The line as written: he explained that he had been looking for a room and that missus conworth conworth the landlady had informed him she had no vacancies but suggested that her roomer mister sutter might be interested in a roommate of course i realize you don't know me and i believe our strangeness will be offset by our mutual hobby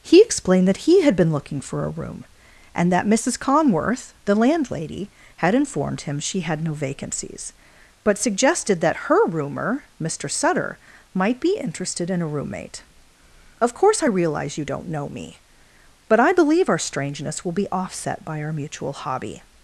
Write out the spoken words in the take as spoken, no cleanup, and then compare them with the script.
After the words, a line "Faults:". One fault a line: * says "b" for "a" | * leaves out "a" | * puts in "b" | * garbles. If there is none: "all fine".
he explained that he had been looking for a room and that missus conworth the landlady had informed him she had no vacancies but suggested that her roomer mister sutter might be interested in a roommate of course i realize you don't know me but i believe our strangeness will be offset by our mutual hobby
Faults:
* leaves out "conworth"
* says "but" for "and"